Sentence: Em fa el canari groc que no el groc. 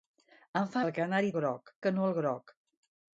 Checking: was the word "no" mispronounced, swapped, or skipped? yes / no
no